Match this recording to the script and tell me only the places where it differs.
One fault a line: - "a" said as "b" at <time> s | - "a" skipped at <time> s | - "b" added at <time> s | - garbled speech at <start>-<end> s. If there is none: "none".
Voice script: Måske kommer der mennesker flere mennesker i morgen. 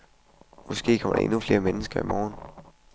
- "mennesker" said as "endnu" at 1.2 s